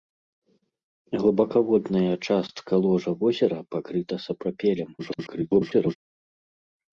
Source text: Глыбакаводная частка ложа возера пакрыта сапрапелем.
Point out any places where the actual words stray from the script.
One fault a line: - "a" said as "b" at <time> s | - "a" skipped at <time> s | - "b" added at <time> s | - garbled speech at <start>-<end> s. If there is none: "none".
- garbled speech at 5.0-6.0 s